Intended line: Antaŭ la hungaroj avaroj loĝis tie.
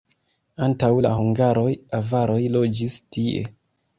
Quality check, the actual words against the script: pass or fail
pass